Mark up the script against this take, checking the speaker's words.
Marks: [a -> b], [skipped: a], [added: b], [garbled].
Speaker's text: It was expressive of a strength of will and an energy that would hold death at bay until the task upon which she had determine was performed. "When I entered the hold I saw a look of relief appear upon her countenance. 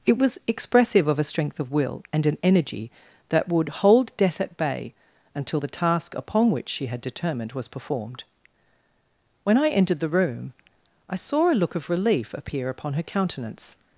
It was expressive of a strength of will and an energy that would hold death at bay until the task upon which she had [determine -> determined] was performed. "When I entered the [hold -> room] I saw a look of relief appear upon her countenance.